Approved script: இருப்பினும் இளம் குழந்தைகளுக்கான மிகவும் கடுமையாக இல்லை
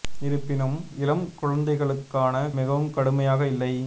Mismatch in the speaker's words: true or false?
false